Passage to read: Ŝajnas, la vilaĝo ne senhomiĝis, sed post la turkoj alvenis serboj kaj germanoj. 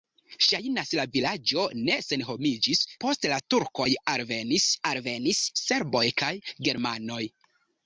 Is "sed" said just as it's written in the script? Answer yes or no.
no